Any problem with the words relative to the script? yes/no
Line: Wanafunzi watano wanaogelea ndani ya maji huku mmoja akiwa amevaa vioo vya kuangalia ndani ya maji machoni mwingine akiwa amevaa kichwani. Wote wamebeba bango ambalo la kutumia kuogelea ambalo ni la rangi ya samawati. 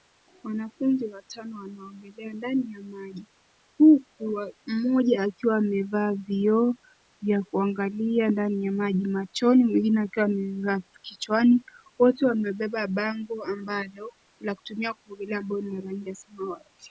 no